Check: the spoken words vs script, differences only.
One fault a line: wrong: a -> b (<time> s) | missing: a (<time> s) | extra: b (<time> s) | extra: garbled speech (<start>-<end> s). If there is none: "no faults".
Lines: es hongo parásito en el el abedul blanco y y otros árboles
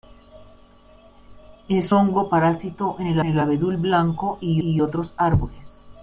no faults